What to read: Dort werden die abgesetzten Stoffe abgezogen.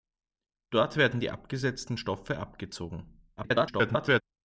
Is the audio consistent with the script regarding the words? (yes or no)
no